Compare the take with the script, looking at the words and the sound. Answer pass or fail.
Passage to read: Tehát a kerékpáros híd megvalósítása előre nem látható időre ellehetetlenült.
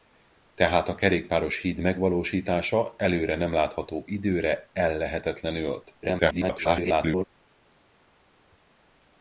fail